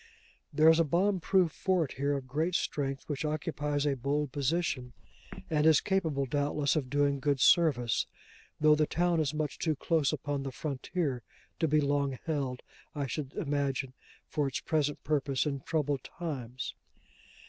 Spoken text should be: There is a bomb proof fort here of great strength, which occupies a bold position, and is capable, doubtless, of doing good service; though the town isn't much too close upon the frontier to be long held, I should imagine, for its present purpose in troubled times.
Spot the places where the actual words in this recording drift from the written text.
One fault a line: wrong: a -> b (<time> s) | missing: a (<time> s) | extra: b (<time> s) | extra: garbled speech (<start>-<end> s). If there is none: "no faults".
wrong: isn't -> is (9.2 s)